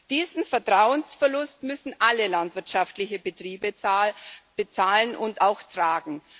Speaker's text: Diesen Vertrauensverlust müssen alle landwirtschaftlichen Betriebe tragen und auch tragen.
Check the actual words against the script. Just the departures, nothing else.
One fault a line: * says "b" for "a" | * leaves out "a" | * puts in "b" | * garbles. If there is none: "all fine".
* says "bezahlen" for "tragen"